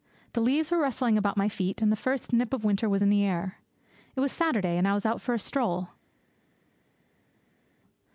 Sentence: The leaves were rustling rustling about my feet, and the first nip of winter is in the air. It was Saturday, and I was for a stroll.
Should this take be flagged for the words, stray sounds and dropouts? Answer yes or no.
yes